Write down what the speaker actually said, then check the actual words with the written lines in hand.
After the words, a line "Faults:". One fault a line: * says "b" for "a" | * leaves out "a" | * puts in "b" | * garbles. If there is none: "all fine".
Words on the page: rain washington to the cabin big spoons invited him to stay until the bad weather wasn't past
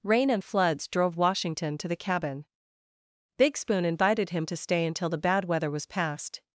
rain and floods drove washington to the cabin big spoon invited him to stay until the bad weather was past
Faults:
* puts in "and floods drove"
* says "spoon" for "spoons"
* says "was" for "wasn't"